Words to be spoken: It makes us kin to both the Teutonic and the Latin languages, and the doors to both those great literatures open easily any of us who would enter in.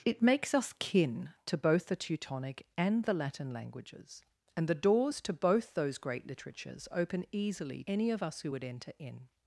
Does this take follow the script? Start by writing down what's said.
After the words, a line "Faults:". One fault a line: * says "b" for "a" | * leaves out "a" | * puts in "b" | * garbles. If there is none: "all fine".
It makes us kin to both the Teutonic and the Latin languages, and the doors to both those great literatures open easily any of us who would enter in.
Faults:
all fine